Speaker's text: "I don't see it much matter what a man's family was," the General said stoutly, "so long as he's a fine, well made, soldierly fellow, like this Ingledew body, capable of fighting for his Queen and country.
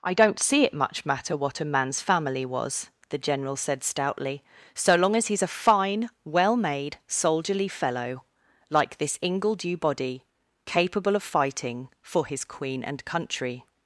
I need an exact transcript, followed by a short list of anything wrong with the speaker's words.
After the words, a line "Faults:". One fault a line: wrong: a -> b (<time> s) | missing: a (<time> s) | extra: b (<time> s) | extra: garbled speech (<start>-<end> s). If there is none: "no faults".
"I don't see it much matter what a man's family was," the General said stoutly, "so long as he's a fine, well made, soldierly fellow, like this Ingledew body, capable of fighting for his Queen and country.
Faults:
no faults